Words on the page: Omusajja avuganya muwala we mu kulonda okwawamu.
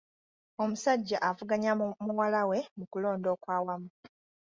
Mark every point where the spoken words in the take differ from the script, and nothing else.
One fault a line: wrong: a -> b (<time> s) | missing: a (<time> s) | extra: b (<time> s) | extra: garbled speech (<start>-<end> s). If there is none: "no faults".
no faults